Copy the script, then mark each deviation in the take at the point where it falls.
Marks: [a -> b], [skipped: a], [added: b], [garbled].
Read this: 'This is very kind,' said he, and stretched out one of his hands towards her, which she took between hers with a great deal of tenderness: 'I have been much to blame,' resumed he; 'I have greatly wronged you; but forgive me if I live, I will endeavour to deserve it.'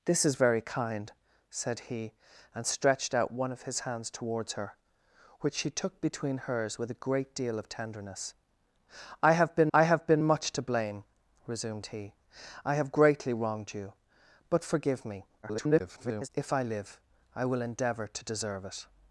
'This is very kind,' said he, and stretched out one of his hands towards her, which she took between hers with a great deal of tenderness: 'I have been [added: I have been] much to blame,' resumed he; 'I have greatly wronged you; but forgive me [garbled] if I live, I will endeavour to deserve it.'